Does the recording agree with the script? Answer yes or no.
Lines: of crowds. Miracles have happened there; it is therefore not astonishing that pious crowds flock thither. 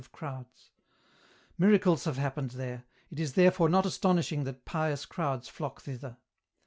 yes